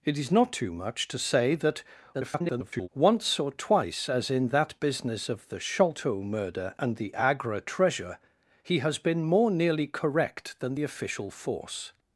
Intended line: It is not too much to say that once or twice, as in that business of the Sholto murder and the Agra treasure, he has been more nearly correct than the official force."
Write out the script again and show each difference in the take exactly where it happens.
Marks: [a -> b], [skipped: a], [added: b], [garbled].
It is not too much to say that [garbled] once or twice, as in that business of the Sholto murder and the Agra treasure, he has been more nearly correct than the official force."